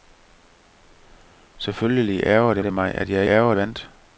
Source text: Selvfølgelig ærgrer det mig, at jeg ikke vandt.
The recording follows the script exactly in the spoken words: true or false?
false